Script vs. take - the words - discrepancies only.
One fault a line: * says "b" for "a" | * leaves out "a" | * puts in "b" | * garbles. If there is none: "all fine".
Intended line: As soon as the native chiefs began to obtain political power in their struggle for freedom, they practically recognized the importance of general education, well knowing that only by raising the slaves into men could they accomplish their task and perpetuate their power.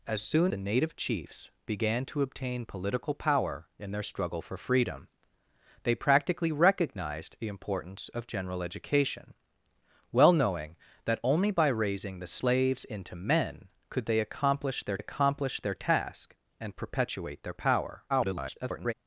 * leaves out "as"
* puts in "accomplish their"
* garbles